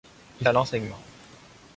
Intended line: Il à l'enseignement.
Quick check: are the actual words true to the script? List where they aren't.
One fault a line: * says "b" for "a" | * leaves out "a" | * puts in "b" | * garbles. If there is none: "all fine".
all fine